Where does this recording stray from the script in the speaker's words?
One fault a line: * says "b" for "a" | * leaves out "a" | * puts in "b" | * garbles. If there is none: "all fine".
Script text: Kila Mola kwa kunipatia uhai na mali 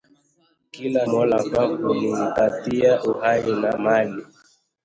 all fine